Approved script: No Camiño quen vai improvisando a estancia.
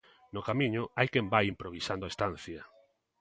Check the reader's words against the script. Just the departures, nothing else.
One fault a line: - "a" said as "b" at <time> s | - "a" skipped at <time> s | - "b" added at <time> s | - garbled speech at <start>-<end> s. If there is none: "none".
- "hai" added at 1.0 s